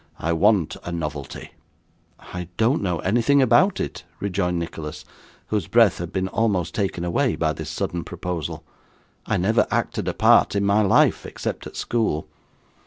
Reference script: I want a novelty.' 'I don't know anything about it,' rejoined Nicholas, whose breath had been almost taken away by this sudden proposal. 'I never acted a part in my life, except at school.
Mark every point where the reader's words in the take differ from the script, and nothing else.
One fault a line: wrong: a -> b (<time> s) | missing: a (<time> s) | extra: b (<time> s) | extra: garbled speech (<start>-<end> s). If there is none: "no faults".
no faults